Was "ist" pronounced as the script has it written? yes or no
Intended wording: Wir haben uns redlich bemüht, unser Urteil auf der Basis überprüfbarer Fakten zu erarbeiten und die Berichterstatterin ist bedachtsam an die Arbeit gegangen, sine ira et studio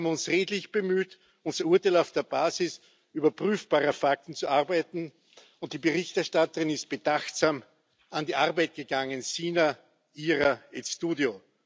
yes